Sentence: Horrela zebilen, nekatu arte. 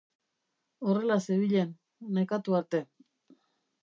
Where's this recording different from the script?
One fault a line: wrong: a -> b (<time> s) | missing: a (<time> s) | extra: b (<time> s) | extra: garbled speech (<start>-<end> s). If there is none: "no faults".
no faults